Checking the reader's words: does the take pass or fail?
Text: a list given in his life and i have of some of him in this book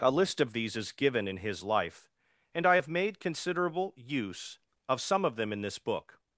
fail